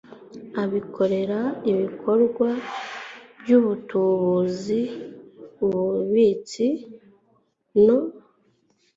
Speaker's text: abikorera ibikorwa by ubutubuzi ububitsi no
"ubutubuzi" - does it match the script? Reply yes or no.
yes